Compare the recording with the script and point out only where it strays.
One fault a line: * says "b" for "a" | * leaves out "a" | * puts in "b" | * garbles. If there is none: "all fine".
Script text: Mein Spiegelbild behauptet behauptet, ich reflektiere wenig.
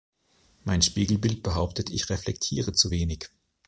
* leaves out "behauptet"
* puts in "zu"